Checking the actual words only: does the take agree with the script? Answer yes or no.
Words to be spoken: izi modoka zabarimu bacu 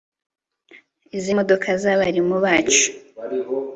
yes